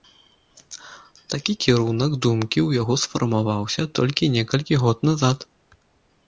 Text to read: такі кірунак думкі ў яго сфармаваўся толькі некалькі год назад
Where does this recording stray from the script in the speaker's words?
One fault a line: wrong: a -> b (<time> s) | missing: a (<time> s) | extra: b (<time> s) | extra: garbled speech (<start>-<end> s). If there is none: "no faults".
no faults